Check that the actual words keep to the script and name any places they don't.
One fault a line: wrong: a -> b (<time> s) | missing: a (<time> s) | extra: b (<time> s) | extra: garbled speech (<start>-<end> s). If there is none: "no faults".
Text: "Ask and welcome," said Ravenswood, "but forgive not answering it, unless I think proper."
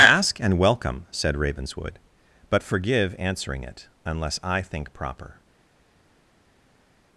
missing: not (3.1 s)